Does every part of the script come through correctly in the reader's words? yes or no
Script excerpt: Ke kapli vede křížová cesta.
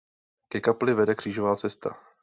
yes